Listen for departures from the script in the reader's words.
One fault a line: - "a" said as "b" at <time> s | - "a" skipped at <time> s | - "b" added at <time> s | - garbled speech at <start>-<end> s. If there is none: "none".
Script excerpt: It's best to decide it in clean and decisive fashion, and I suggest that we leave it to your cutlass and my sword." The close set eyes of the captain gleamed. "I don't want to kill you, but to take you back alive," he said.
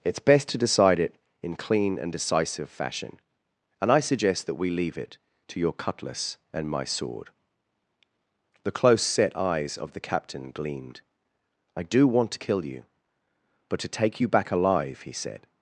- "don't" said as "do" at 11.8 s